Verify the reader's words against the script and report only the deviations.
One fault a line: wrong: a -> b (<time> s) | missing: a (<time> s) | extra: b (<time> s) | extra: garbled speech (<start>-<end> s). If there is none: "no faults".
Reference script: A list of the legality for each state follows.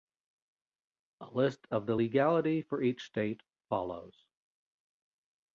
no faults